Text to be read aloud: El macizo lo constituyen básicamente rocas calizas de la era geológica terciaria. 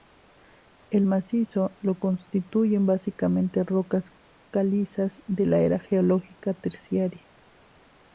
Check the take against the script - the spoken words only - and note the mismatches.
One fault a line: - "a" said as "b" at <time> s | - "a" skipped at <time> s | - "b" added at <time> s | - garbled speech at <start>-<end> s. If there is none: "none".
none